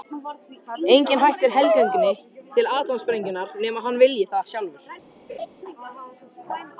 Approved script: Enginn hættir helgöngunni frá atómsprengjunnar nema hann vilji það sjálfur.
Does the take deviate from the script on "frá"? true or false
true